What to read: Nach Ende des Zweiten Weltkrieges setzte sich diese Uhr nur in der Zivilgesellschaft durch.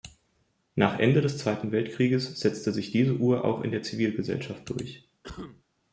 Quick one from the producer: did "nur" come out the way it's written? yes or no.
no